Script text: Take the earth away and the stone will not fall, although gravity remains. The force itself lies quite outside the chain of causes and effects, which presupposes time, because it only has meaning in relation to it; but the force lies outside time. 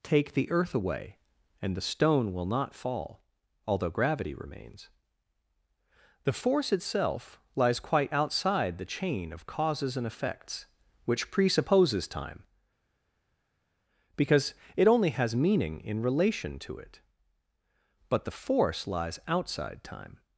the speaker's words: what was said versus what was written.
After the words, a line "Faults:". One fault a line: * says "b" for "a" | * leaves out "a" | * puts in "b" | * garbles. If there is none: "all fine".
Take the earth away and the stone will not fall, although gravity remains. The force itself lies quite outside the chain of causes and effects, which presupposes time, because it only has meaning in relation to it; but the force lies outside time.
Faults:
all fine